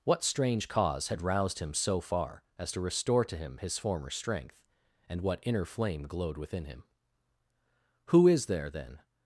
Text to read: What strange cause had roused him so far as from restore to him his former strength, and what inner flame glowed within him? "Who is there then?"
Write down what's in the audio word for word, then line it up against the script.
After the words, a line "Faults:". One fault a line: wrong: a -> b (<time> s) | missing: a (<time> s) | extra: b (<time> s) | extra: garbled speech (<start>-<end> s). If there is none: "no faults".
What strange cause had roused him so far as to restore to him his former strength, and what inner flame glowed within him? "Who is there then?"
Faults:
wrong: from -> to (2.7 s)